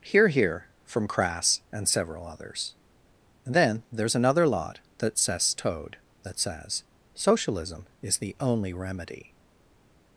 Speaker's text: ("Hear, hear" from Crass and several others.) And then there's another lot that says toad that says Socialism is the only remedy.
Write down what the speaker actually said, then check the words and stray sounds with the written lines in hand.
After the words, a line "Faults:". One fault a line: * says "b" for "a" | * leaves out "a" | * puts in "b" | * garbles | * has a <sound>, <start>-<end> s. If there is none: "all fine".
("Hear, hear" from Crass and several others.) And then there's another lot that says toad that says Socialism is the only remedy.
Faults:
all fine